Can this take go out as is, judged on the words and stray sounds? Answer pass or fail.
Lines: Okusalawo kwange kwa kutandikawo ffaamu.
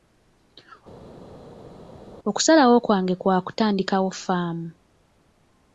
pass